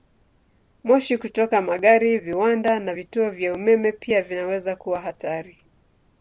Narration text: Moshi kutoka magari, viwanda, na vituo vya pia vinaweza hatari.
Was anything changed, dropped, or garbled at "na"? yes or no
no